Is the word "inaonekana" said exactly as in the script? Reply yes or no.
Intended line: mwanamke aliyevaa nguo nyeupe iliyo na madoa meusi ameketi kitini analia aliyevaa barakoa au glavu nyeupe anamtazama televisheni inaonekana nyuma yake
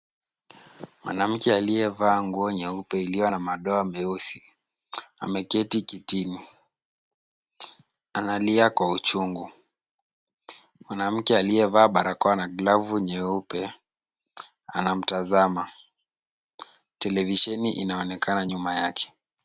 yes